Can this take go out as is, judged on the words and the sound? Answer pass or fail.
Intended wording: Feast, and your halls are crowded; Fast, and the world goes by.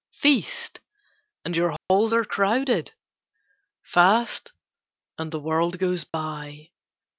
fail